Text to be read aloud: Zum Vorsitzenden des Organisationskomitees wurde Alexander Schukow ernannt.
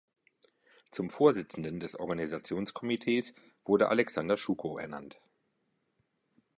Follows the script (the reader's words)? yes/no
yes